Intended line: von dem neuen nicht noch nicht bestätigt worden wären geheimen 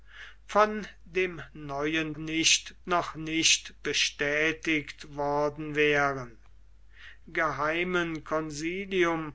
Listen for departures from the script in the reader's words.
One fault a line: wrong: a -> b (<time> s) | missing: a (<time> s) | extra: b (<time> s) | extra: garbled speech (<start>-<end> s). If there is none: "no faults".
no faults